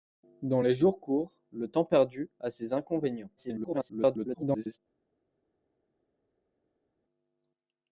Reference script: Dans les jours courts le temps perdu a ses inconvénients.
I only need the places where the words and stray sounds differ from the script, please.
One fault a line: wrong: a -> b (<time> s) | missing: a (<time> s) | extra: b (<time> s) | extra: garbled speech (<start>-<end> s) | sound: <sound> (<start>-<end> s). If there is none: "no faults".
extra: garbled speech (3.4-4.8 s)